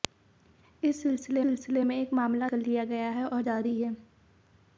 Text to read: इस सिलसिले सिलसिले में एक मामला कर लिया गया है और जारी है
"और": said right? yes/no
yes